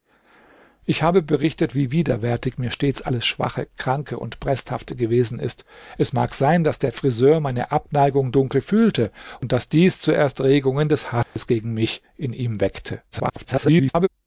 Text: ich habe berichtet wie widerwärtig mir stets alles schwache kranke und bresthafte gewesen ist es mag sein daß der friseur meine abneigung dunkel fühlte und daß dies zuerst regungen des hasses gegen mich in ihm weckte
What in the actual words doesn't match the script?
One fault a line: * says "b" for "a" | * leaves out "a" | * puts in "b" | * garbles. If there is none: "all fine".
* garbles